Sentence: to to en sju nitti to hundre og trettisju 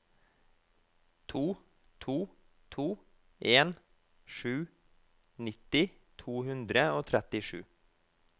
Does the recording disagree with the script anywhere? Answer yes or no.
yes